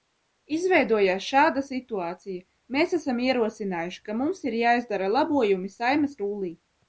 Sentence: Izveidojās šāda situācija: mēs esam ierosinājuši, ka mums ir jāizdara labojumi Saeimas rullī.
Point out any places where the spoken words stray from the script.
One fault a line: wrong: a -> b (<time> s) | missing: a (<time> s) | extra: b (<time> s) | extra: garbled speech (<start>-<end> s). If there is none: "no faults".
no faults